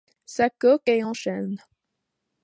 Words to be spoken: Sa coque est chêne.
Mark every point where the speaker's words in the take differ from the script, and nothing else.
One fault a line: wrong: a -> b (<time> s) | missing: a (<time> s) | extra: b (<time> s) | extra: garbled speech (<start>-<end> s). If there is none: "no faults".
extra: en (1.0 s)